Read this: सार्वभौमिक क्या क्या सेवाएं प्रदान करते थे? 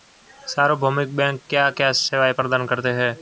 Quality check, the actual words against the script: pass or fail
fail